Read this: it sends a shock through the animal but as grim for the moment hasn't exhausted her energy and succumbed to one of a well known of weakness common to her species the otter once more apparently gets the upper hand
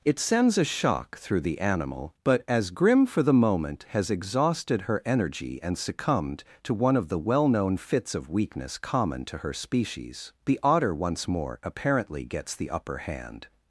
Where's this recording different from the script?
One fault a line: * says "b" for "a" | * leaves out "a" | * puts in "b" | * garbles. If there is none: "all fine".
* says "has" for "hasn't"
* says "the" for "a"
* puts in "fits"